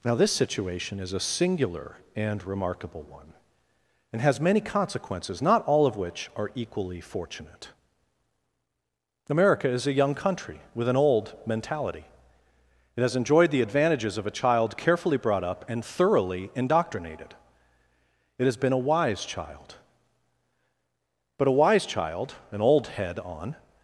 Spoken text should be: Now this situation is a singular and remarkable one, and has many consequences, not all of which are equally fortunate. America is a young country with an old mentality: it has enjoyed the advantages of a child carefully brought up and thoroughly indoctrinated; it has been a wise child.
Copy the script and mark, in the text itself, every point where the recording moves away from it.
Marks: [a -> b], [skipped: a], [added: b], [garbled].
Now this situation is a singular and remarkable one, and has many consequences, not all of which are equally fortunate. America is a young country with an old mentality: it has enjoyed the advantages of a child carefully brought up and thoroughly indoctrinated; it has been a wise child. [added: But a wise child an old head on]